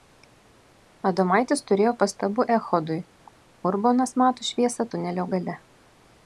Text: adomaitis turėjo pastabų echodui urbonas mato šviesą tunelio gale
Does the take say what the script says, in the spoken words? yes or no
yes